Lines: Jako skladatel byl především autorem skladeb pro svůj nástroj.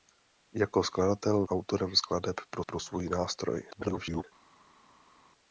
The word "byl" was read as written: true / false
false